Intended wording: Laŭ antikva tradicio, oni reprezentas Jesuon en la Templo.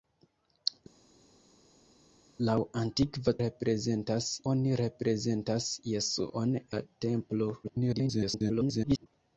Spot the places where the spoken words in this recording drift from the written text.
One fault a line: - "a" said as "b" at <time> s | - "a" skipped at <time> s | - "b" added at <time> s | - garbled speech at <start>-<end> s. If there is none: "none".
- "tradicio" said as "reprezentas" at 3.4 s
- "en" skipped at 6.6 s
- garbled speech at 7.6-9.1 s